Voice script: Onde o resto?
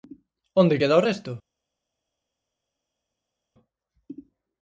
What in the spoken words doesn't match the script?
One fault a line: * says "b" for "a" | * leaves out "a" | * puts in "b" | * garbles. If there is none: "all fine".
* puts in "queda"